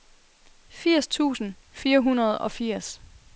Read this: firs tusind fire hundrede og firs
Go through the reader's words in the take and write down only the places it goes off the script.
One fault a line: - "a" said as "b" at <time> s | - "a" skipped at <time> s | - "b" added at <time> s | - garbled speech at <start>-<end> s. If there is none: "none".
none